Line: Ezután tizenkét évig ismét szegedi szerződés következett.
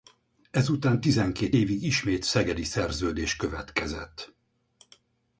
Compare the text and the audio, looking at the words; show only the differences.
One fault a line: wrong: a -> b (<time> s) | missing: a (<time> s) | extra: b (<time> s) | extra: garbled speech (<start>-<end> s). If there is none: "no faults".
no faults